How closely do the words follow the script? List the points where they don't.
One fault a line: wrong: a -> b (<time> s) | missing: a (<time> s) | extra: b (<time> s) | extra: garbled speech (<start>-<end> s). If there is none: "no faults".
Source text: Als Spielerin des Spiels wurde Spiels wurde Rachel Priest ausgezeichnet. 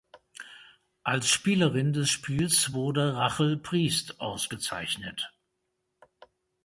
missing: Spiels wurde (3.2 s)